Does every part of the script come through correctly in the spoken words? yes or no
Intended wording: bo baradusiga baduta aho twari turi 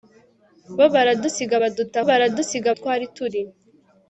no